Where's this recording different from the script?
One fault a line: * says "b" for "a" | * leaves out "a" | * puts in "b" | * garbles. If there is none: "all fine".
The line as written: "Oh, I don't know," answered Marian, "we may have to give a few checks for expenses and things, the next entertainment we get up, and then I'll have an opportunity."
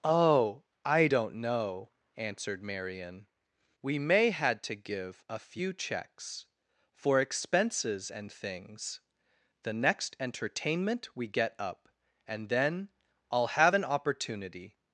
* says "had" for "have"